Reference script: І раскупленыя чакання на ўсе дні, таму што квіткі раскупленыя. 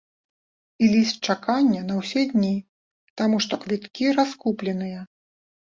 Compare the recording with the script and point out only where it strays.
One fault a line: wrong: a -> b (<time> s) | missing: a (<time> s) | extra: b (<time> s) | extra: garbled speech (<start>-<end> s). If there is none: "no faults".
wrong: раскупленыя -> ліст (0.9 s)